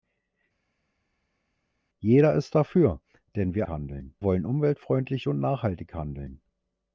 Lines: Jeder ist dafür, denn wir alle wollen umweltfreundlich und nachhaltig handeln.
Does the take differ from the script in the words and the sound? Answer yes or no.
yes